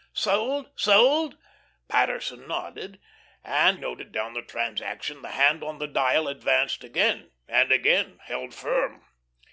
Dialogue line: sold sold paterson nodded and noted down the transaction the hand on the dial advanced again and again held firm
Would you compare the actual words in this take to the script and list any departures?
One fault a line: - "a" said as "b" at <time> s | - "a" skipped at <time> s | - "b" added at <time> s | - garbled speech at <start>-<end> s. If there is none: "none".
none